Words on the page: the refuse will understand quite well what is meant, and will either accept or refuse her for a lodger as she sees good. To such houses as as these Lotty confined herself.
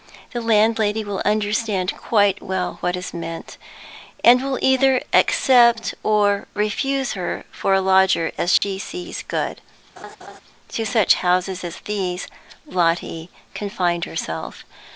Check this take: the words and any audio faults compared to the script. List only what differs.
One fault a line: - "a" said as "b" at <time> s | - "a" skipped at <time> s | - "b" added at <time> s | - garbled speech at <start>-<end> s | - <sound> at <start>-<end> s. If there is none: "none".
- "refuse" said as "landlady" at 0.4 s
- dropout at 8.6-8.6 s
- laugh at 10.0-10.4 s
- "as" skipped at 11.8 s